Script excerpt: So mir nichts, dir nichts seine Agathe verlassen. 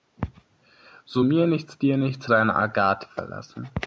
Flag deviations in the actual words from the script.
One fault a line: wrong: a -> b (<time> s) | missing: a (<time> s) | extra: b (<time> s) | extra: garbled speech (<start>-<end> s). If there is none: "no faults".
no faults